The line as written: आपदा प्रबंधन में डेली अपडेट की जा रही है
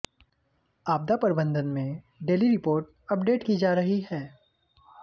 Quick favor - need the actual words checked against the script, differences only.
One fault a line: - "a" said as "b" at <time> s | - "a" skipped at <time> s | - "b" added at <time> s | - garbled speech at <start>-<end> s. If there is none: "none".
- "रिपोर्ट" added at 2.5 s